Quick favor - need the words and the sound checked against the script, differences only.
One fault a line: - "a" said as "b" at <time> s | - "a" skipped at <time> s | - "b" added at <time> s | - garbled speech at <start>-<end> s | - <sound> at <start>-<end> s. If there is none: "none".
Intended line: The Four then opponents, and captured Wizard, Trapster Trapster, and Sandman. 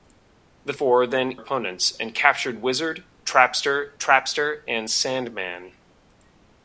none